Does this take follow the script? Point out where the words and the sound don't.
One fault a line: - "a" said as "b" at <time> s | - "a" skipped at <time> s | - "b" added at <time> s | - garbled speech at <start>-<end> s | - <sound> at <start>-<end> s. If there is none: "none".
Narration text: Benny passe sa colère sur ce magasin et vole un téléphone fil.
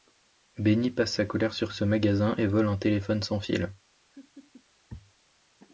- "sans" added at 3.2 s
- laugh at 4.1-4.6 s